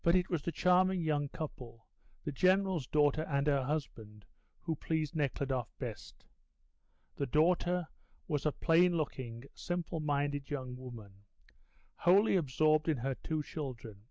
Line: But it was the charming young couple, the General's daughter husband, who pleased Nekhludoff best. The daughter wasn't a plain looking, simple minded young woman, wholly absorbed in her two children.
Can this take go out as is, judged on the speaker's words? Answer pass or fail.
fail